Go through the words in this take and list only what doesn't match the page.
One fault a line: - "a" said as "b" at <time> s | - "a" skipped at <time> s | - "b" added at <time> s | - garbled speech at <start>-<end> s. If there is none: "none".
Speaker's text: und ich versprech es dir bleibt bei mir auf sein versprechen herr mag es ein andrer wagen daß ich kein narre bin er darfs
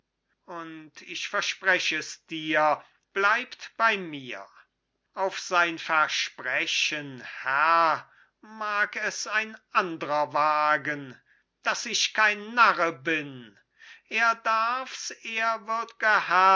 none